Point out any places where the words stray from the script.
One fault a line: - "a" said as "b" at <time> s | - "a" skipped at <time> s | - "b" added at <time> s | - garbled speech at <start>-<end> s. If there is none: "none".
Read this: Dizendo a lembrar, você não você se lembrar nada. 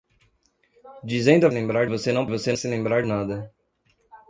none